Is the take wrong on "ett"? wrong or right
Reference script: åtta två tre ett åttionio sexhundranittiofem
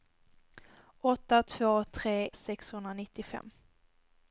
wrong